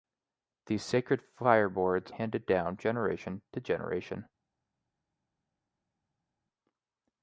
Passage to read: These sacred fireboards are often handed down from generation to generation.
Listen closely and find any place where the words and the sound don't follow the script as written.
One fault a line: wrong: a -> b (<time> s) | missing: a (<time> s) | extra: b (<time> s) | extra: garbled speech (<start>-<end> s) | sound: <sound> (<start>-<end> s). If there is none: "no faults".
missing: are often (2.1 s)
missing: from (2.8 s)